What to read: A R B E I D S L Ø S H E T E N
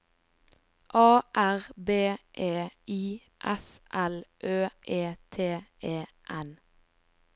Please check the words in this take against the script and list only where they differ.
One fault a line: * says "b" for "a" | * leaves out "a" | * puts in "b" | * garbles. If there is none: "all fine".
* leaves out "D"
* leaves out "S H"